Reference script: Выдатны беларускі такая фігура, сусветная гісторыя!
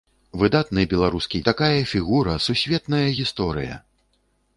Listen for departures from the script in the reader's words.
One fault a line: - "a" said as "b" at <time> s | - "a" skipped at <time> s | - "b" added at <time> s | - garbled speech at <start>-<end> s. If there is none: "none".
none